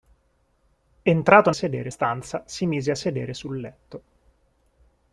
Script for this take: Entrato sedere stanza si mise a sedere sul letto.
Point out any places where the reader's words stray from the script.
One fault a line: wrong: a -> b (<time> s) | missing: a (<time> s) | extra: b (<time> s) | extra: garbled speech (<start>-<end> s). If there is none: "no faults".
no faults